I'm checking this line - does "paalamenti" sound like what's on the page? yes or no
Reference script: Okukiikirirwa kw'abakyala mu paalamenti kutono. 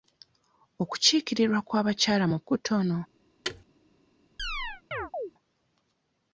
no